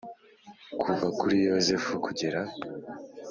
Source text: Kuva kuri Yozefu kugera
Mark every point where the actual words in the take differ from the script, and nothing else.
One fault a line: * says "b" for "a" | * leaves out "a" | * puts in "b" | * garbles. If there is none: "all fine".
all fine